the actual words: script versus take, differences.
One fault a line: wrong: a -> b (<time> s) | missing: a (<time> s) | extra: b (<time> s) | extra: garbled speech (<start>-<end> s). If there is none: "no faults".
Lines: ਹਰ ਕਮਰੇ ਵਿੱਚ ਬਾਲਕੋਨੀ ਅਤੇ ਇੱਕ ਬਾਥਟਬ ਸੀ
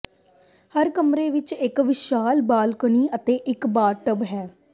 extra: ਇੱਕ ਵਿਸ਼ਾਲ (1.5 s)
wrong: ਸੀ -> ਹੈ (4.2 s)